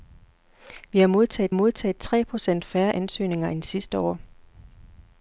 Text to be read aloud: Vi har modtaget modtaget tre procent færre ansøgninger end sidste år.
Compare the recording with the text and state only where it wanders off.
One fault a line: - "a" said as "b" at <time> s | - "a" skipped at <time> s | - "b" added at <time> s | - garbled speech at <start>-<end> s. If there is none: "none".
none